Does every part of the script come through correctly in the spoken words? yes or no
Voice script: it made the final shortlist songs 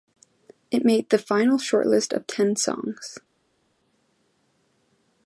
no